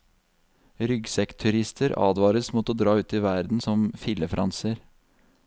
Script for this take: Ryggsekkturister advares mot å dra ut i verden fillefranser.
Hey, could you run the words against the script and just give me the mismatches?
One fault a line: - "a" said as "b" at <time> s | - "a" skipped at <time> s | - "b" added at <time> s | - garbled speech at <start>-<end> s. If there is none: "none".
- "som" added at 3.6 s